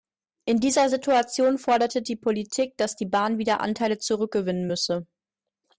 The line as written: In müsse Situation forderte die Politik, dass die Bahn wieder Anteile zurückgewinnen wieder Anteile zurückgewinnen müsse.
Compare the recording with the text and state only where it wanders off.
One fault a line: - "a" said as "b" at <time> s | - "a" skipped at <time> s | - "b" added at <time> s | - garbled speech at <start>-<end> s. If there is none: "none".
- "müsse" said as "dieser" at 0.6 s
- "wieder Anteile zurückgewinnen" skipped at 4.7 s